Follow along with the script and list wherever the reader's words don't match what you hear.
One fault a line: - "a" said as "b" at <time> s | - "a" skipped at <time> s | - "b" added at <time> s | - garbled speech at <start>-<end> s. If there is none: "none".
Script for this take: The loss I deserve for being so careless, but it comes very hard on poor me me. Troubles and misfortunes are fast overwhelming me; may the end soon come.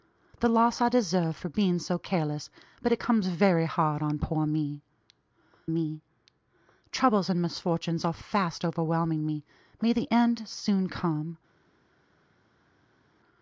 none